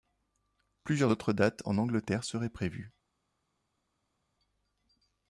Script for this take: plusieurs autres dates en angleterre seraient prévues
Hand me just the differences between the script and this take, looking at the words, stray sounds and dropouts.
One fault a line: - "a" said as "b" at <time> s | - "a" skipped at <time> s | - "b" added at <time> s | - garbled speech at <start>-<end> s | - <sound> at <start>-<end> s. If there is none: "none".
none